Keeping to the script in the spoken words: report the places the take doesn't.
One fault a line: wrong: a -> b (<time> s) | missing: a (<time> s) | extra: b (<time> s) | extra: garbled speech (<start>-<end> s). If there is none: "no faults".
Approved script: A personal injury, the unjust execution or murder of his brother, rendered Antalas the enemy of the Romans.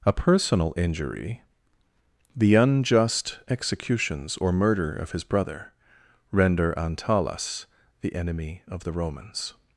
wrong: execution -> executions (3.5 s)
wrong: rendered -> render (6.3 s)